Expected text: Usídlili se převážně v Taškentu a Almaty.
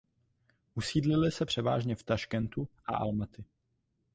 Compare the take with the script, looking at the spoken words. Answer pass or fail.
pass